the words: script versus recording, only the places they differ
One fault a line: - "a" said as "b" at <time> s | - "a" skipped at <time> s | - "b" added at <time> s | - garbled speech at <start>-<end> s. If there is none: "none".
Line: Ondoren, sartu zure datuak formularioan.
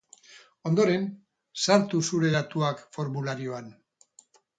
none